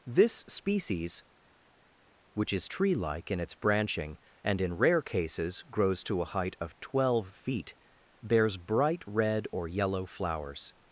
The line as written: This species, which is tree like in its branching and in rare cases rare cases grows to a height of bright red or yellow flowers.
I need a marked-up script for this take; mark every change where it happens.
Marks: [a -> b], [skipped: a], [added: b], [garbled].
This species, which is tree like in its branching and in rare cases [skipped: rare cases] grows to a height of [added: twelve feet bears] bright red or yellow flowers.